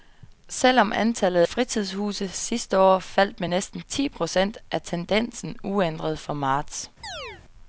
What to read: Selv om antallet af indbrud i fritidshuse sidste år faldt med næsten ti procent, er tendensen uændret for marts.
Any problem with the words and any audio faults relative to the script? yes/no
yes